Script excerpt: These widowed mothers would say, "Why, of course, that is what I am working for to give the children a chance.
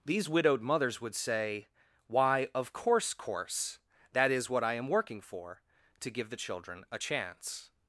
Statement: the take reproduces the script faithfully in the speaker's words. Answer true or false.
false